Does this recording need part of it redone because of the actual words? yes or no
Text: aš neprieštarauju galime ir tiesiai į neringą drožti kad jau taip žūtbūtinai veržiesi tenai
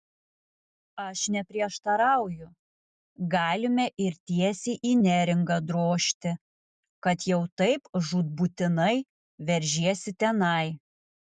no